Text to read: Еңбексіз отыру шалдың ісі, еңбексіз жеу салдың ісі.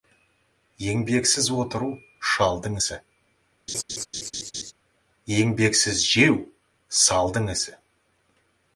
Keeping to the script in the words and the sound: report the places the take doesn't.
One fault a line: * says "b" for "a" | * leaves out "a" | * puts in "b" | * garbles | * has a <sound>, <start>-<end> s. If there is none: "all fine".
* has a laugh, 3.7-4.7 s